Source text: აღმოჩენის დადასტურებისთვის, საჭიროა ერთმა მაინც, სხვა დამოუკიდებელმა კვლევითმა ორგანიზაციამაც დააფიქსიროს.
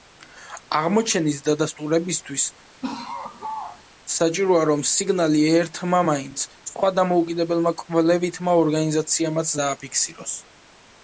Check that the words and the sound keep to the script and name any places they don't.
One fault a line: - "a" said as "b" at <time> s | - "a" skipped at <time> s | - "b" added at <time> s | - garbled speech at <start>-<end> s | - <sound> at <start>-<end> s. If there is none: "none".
- laugh at 2.8-3.8 s
- "რომ სიგნალი" added at 4.7 s